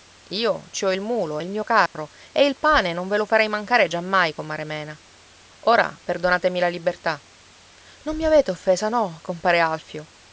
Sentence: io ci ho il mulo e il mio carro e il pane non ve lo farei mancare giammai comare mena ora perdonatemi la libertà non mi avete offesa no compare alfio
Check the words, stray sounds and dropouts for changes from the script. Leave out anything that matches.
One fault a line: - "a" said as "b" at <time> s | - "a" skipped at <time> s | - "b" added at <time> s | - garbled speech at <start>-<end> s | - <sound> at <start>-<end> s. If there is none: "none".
- dropout at 1.9-1.9 s